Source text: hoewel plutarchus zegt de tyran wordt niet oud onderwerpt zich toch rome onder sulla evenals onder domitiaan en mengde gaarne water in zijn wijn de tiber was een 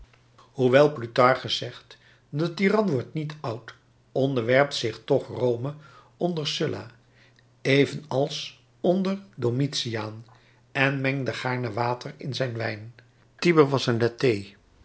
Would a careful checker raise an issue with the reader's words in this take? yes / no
yes